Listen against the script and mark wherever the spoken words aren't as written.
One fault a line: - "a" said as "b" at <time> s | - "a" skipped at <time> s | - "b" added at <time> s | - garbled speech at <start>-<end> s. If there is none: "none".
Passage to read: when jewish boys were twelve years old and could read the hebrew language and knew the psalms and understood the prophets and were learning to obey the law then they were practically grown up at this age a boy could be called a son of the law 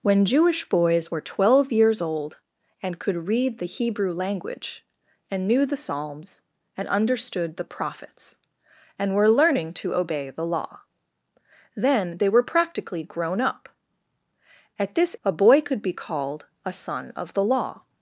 - "age" skipped at 15.2 s